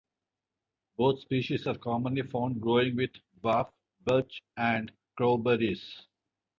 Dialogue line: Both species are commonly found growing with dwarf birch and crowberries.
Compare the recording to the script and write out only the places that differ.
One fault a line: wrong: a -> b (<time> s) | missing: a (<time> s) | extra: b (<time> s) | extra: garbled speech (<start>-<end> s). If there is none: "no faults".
no faults